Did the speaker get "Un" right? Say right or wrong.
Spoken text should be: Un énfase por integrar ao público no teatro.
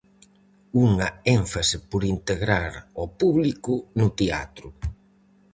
wrong